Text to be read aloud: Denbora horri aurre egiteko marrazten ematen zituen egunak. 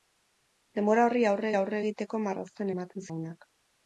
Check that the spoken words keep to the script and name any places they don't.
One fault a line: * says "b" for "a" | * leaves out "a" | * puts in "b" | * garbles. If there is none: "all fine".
* puts in "aurre"
* leaves out "zituen"